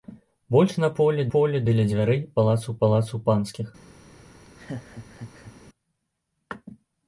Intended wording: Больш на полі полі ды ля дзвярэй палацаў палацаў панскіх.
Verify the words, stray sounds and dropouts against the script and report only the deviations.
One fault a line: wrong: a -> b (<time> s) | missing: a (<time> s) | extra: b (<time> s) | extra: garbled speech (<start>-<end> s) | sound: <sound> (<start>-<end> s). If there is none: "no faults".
sound: laugh (4.4-5.5 s)